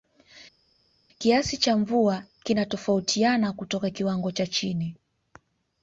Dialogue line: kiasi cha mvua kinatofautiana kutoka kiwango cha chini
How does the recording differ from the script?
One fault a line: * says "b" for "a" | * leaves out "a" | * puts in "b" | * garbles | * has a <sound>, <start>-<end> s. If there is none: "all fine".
all fine